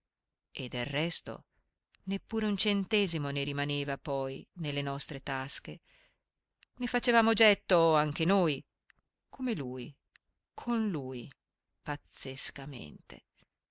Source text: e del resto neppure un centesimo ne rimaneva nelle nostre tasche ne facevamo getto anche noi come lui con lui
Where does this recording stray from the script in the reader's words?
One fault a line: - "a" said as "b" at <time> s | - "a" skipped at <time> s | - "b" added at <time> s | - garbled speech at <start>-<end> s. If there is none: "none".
- "poi" added at 4.0 s